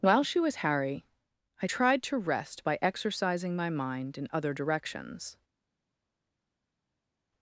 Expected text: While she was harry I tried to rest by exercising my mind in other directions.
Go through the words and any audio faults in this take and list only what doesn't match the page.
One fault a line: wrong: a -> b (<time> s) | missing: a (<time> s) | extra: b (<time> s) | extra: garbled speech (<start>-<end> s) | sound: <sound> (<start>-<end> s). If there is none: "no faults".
no faults